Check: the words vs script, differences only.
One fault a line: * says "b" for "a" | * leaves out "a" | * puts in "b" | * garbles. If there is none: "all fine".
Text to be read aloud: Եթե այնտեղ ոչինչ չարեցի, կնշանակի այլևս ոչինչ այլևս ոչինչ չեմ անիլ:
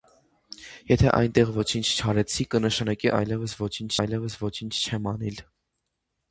all fine